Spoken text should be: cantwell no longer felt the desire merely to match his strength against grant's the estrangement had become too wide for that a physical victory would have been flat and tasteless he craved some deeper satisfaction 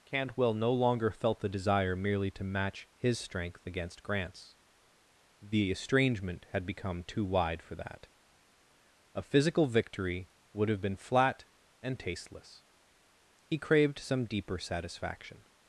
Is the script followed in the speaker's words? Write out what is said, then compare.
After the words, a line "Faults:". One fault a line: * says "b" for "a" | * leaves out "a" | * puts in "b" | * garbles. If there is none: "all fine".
cantwell no longer felt the desire merely to match his strength against grant's the estrangement had become too wide for that a physical victory would have been flat and tasteless he craved some deeper satisfaction
Faults:
all fine